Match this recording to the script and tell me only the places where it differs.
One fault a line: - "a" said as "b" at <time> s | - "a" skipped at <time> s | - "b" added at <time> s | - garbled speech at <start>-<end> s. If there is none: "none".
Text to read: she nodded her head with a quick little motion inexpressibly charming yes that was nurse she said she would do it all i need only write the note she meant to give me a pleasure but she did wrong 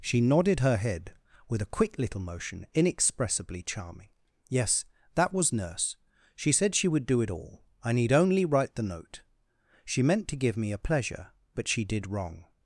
none